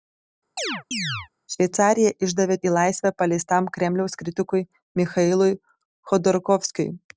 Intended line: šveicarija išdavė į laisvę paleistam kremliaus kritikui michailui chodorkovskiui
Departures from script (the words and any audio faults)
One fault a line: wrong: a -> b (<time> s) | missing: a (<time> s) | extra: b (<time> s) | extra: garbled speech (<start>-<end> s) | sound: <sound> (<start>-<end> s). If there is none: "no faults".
sound: chirp (0.6-1.3 s)